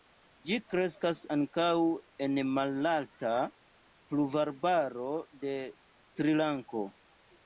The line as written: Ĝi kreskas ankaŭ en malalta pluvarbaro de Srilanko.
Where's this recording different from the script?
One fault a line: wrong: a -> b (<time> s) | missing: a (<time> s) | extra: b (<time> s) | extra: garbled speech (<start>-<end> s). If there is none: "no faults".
no faults